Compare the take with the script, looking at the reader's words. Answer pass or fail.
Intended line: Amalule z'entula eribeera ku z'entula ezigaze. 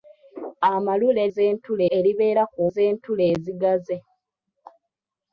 pass